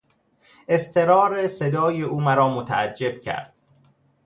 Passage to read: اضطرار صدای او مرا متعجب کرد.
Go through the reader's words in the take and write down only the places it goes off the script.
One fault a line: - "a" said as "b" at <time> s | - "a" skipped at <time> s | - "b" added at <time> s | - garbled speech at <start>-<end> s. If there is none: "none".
none